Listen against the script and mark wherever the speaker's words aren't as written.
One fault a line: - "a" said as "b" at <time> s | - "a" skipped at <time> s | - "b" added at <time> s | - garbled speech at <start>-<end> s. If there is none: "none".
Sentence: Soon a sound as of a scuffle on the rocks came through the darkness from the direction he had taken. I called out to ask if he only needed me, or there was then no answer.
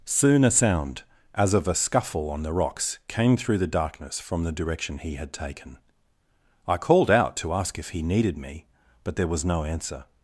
- "only" skipped at 8.0 s
- "or" said as "but" at 9.0 s
- "then" skipped at 9.4 s